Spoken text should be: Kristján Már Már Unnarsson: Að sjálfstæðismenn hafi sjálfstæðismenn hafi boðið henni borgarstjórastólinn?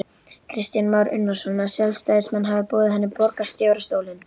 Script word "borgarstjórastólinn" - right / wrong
right